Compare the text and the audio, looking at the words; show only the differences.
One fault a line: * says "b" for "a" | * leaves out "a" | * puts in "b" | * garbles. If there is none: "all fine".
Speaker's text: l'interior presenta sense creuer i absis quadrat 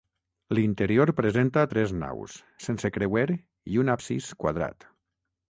* puts in "tres naus"
* puts in "un"